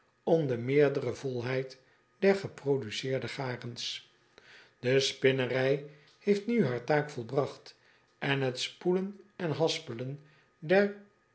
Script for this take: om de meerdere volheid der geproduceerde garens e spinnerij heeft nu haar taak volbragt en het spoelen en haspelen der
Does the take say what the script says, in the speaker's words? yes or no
yes